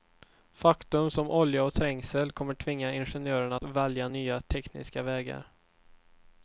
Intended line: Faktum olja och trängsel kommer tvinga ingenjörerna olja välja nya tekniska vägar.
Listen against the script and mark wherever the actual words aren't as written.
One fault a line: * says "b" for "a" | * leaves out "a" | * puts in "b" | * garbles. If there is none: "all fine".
* puts in "som"
* says "att" for "olja"